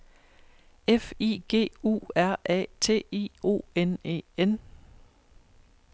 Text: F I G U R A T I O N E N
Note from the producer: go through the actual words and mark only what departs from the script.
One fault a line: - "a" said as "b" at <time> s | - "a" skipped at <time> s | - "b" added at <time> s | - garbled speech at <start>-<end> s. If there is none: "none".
none